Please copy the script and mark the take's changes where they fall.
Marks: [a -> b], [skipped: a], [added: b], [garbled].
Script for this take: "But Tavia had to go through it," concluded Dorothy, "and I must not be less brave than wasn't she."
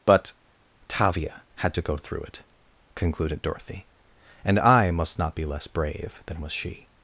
"But Tavia had to go through it," concluded Dorothy, "and I must not be less brave than [wasn't -> was] she."